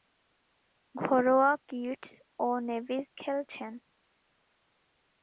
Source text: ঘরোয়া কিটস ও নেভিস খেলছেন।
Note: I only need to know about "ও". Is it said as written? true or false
true